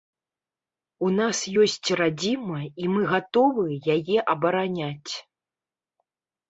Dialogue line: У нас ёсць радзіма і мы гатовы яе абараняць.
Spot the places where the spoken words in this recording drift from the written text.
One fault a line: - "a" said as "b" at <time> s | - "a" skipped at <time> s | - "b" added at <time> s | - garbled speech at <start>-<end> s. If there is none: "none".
none